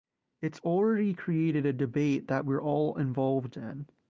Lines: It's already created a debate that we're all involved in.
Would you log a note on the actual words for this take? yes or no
no